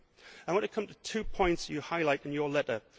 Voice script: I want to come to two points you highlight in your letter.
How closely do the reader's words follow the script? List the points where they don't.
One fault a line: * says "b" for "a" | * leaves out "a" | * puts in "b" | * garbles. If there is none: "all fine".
all fine